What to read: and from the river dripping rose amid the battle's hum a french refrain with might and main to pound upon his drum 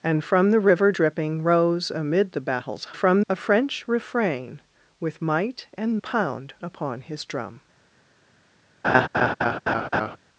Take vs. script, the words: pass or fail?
fail